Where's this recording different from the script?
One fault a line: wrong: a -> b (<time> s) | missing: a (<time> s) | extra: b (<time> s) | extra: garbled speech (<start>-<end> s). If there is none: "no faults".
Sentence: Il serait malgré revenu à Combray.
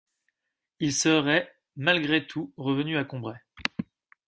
extra: tout (2.2 s)